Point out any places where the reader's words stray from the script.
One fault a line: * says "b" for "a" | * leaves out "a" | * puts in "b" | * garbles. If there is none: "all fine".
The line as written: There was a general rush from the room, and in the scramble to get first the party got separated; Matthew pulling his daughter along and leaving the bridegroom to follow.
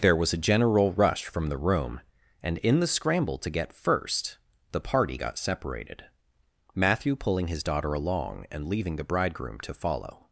all fine